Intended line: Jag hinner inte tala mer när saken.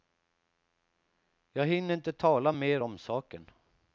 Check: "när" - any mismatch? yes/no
yes